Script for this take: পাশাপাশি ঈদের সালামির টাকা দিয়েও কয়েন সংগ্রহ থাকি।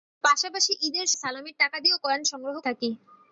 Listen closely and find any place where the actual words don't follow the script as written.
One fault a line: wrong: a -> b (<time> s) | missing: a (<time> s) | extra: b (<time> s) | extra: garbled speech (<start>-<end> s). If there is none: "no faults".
no faults